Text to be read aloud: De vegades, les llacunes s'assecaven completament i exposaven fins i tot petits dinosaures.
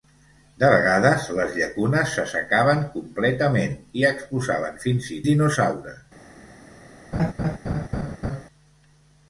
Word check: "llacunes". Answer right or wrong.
right